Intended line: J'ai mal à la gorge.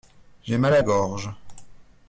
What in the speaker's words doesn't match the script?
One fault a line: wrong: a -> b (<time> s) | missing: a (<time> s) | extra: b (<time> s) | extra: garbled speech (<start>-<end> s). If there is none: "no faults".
missing: la (0.8 s)